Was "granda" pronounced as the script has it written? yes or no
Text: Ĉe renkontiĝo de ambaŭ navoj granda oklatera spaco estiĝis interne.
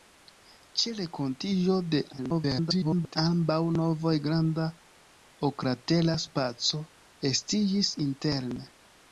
yes